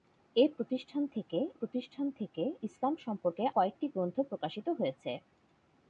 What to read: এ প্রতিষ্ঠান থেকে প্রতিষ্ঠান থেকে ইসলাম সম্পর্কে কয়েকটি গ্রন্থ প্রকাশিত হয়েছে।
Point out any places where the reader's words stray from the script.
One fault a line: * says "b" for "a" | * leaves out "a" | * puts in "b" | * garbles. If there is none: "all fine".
all fine